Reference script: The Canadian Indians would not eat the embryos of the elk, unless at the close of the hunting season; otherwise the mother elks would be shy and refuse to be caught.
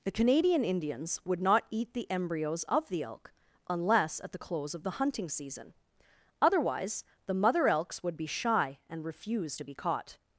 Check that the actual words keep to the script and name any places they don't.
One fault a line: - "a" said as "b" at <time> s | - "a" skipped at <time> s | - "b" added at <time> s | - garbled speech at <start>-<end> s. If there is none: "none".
none